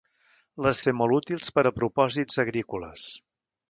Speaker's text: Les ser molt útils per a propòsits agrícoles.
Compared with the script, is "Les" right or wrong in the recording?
right